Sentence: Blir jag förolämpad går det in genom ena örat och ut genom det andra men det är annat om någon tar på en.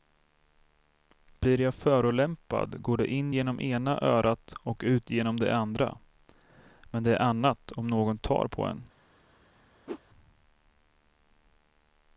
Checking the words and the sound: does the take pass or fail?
fail